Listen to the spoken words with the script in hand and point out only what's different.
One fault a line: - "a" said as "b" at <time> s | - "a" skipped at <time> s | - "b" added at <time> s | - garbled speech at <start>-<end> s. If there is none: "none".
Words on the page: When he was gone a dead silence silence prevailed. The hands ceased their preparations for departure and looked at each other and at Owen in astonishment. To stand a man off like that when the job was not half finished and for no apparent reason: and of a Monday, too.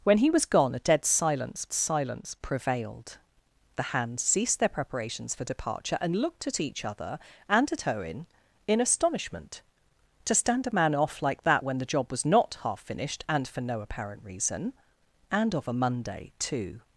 none